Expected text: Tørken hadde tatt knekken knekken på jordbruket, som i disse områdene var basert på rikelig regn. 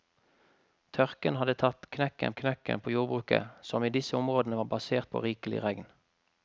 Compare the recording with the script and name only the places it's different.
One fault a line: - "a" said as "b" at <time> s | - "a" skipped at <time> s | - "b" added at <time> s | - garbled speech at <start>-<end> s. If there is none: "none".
none